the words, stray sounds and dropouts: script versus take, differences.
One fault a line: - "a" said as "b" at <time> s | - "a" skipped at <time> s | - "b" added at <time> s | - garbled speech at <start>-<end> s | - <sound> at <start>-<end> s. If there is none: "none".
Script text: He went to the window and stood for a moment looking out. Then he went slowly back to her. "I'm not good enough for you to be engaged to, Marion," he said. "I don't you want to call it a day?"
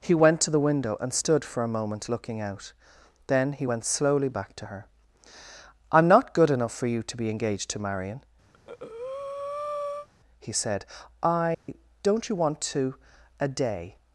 - breath at 8.5-10.1 s
- dropout at 11.5-11.7 s
- "call it" skipped at 13.0 s